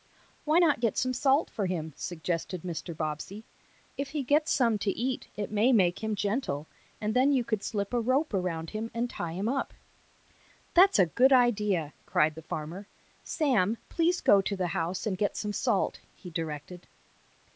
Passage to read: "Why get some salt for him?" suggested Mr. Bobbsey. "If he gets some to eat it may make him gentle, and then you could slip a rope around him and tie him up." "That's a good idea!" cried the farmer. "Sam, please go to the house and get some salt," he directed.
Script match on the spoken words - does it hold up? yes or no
no